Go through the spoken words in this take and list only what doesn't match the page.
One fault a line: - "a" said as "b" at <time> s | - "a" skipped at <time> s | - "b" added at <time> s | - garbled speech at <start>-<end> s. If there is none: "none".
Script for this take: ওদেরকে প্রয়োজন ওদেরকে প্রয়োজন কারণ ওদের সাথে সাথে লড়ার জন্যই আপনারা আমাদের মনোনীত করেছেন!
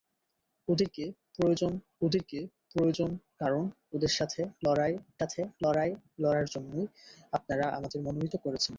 none